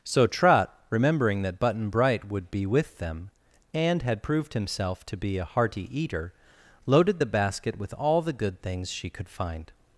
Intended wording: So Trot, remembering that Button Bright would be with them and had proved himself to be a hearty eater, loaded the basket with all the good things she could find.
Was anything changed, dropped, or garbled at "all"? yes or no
no